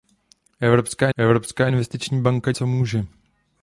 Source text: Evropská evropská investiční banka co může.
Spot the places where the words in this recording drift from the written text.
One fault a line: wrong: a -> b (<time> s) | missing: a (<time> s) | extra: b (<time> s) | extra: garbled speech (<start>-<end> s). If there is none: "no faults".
no faults